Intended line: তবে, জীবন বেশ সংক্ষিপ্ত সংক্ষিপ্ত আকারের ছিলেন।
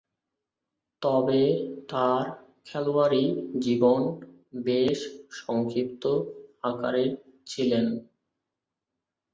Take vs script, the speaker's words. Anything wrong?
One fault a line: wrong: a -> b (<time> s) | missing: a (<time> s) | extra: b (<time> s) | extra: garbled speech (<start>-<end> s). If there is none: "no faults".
extra: তার খেলোয়াড়ী (1.9 s)
missing: সংক্ষিপ্ত (6.0 s)